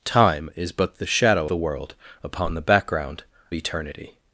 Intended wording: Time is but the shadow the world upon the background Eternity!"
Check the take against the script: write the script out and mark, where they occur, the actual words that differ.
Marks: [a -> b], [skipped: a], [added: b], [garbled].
Time is but the shadow the world upon the background Eternity!"